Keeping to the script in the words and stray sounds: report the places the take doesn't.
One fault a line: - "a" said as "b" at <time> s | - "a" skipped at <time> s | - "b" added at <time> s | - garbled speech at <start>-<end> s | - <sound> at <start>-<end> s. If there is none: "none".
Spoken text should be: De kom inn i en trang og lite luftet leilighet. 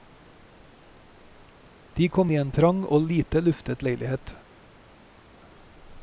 - "inn" skipped at 2.3 s